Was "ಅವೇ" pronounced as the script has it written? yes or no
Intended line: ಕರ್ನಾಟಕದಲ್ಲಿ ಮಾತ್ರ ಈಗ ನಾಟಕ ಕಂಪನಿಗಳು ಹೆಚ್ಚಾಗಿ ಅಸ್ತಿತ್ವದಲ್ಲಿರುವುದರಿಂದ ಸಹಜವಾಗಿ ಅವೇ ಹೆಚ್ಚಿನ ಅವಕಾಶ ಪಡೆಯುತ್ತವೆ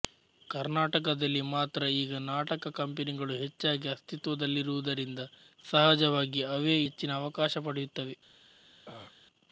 yes